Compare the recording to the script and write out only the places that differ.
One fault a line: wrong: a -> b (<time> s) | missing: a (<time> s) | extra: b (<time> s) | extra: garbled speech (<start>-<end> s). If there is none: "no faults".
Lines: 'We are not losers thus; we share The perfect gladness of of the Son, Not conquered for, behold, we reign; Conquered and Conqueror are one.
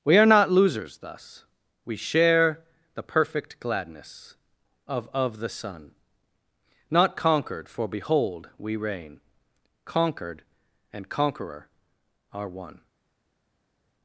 no faults